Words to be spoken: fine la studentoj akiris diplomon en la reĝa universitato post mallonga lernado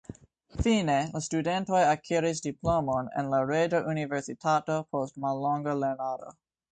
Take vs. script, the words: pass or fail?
pass